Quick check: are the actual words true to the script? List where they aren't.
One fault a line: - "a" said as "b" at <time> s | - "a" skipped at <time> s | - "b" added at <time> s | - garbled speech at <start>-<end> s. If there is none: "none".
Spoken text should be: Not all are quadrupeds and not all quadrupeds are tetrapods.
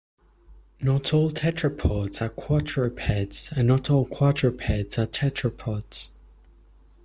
- "tetrapods" added at 1.3 s